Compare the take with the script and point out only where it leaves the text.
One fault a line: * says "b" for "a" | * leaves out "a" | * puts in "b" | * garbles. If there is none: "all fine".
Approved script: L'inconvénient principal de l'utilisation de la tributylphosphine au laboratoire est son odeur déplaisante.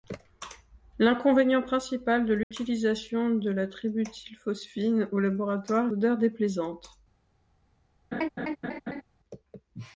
* leaves out "son"